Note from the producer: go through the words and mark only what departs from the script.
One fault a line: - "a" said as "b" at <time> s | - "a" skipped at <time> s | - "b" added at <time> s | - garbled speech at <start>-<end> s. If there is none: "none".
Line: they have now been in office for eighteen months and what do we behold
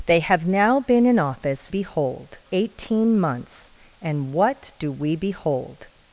- "for" said as "behold" at 1.7 s